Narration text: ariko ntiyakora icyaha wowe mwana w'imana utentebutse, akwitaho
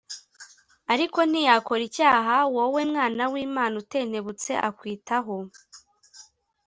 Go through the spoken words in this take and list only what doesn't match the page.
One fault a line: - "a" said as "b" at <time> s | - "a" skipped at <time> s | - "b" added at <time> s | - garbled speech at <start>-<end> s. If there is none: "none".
none